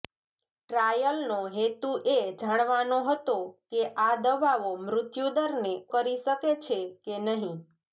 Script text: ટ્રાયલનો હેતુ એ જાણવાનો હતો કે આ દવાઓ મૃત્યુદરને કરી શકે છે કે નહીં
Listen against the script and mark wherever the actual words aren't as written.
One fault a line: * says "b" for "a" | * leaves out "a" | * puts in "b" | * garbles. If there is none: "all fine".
all fine